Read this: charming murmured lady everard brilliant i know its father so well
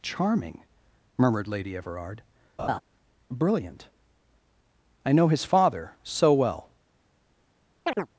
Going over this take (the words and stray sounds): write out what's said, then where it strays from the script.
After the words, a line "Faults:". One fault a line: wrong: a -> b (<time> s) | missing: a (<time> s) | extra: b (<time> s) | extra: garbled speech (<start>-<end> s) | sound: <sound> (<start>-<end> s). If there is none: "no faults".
charming murmured lady everard brilliant i know his father so well
Faults:
sound: laugh (2.6-2.8 s)
wrong: its -> his (5.3 s)
sound: chirp (7.8-8.1 s)